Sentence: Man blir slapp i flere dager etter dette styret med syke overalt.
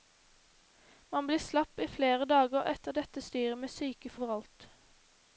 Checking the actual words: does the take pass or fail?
pass